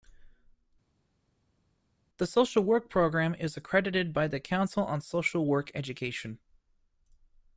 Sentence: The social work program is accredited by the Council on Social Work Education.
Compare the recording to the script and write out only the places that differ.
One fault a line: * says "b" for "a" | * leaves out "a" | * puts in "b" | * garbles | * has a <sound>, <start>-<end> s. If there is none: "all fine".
all fine